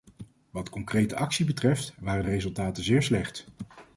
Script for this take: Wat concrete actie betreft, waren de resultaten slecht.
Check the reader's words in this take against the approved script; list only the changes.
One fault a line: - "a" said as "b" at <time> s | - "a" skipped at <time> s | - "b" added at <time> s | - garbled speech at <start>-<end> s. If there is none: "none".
- "zeer" added at 2.8 s